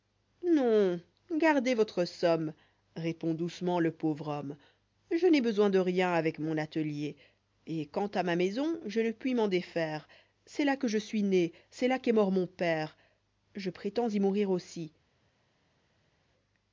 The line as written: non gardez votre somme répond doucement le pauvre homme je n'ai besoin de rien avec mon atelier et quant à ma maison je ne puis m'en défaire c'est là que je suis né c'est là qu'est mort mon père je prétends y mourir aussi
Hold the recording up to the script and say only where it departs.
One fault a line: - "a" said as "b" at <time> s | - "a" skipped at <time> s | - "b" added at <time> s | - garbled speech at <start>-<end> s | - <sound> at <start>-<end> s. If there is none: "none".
none